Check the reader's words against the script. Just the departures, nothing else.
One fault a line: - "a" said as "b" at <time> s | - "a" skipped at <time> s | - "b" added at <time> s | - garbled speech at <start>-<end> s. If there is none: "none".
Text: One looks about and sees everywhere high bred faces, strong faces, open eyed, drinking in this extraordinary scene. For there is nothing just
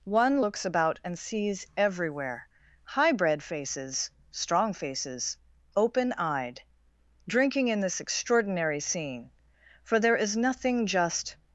none